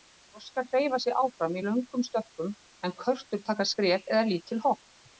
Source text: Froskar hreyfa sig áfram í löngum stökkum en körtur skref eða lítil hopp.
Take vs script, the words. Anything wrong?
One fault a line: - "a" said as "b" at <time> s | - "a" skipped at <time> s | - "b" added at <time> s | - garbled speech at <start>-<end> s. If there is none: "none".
- "taka" added at 3.5 s